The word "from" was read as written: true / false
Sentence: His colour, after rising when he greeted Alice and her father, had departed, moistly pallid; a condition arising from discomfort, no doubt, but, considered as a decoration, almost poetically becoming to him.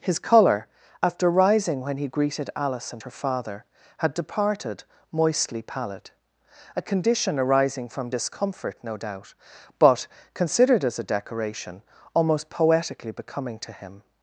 true